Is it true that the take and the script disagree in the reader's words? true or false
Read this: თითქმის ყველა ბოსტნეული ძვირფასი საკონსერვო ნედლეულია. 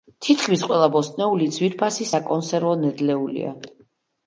false